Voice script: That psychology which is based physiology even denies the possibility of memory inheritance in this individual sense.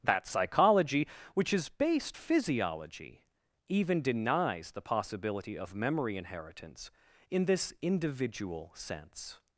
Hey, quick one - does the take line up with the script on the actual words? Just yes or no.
yes